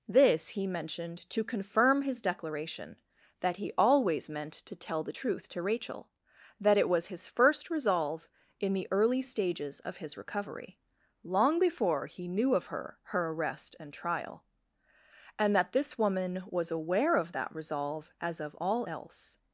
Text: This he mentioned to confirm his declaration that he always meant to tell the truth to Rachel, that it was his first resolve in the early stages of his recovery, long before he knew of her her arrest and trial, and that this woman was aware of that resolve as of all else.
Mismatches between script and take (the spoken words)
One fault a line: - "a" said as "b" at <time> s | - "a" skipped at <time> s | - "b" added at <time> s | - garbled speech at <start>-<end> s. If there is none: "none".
none